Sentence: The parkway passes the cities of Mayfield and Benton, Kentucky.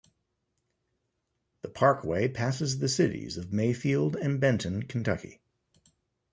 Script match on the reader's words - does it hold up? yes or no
yes